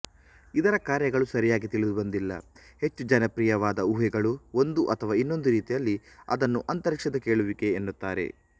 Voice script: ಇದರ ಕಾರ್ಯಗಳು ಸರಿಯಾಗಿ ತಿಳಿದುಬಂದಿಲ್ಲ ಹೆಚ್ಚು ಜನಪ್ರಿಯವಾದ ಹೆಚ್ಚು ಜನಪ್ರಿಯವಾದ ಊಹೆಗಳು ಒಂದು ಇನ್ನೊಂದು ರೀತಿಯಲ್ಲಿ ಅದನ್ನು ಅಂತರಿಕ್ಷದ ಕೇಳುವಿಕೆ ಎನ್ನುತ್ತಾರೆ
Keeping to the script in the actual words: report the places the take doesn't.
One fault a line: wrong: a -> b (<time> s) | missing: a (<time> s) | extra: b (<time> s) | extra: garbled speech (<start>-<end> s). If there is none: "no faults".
missing: ಹೆಚ್ಚು ಜನಪ್ರಿಯವಾದ (3.9 s)
extra: ಅಥವಾ (5.0 s)